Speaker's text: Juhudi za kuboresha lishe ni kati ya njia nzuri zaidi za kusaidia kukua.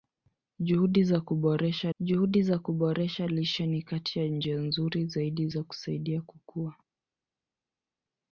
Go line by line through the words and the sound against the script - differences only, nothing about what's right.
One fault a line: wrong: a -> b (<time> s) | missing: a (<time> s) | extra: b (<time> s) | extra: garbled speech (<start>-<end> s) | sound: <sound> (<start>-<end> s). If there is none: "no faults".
extra: juhudi za kuboresha (2.0 s)